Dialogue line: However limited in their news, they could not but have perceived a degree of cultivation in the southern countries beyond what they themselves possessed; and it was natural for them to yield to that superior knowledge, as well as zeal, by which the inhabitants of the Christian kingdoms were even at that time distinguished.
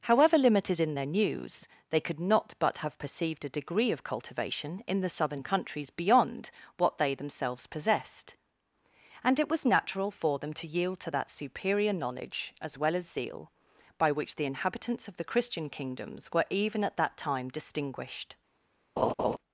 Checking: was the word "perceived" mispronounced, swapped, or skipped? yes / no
no